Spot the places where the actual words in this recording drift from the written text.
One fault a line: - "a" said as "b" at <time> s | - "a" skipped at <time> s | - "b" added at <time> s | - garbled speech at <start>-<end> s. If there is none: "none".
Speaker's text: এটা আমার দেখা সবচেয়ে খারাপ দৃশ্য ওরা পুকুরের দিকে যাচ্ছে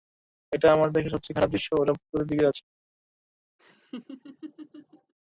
none